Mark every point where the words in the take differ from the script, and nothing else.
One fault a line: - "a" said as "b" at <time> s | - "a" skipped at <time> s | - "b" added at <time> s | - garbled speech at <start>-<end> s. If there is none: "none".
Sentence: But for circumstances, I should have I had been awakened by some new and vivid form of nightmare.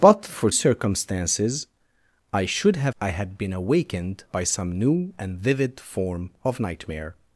none